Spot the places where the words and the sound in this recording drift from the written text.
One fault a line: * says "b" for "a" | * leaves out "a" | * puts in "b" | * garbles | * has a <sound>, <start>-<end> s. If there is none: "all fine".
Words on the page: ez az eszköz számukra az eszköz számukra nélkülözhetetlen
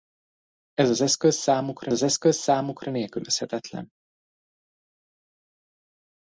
all fine